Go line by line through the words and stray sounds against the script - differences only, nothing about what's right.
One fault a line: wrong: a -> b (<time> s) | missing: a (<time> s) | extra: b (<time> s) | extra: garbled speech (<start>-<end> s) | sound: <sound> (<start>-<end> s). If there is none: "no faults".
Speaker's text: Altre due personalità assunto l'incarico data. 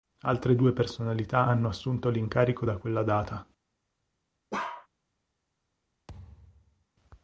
extra: hanno (1.4 s)
extra: da quella (2.6 s)
sound: bark (4.5-4.9 s)
sound: thud (6.1-6.9 s)